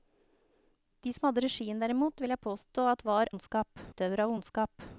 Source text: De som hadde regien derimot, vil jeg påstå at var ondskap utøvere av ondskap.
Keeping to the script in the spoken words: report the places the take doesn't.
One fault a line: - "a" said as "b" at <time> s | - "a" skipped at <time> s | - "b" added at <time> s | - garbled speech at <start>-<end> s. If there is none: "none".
none